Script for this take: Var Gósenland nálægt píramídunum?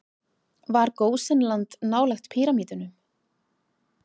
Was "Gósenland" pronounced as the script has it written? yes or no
yes